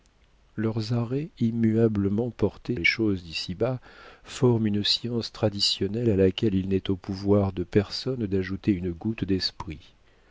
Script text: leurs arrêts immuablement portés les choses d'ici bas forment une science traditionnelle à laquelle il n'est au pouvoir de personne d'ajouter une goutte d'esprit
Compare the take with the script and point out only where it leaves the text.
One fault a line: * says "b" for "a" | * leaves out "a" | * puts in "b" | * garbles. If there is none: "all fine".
all fine